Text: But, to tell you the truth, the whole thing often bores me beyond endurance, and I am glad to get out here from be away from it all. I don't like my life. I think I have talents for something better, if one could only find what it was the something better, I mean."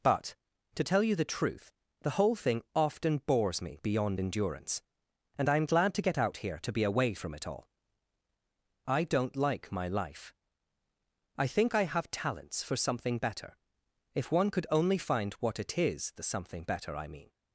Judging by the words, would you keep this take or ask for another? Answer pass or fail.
fail